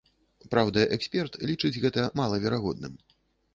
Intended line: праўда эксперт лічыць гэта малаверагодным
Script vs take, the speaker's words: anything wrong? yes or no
no